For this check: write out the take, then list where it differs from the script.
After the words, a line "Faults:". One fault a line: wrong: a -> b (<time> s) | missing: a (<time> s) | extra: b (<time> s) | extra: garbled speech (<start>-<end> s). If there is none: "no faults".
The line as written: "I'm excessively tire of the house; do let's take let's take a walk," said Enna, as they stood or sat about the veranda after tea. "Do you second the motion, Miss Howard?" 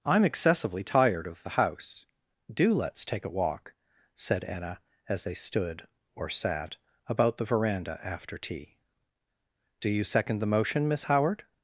"I'm excessively tired of the house; do let's take a walk," said Enna, as they stood or sat about the veranda after tea. "Do you second the motion, Miss Howard?"
Faults:
wrong: tire -> tired (0.8 s)
missing: let's take (3.2 s)